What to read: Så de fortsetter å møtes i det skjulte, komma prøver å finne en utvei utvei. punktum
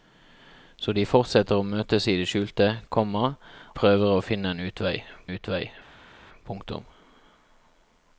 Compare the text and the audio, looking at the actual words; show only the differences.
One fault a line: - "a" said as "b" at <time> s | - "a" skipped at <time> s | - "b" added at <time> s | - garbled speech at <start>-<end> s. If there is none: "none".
none